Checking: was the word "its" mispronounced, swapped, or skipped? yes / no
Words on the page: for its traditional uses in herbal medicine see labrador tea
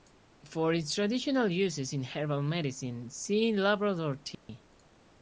no